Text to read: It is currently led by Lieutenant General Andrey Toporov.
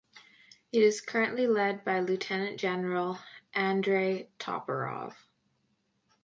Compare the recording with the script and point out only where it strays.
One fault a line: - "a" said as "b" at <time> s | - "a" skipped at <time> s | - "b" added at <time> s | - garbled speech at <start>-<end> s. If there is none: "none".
none